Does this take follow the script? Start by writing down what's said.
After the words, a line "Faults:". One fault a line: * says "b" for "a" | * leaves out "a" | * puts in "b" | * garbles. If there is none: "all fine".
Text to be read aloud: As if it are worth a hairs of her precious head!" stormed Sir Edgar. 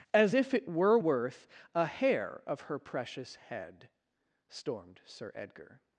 As if it were worth a hair of her precious head!" stormed Sir Edgar.
Faults:
* says "were" for "are"
* says "hair" for "hairs"